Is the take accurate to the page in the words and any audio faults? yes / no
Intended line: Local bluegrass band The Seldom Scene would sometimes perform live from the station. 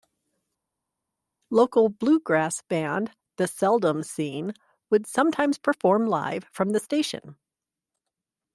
yes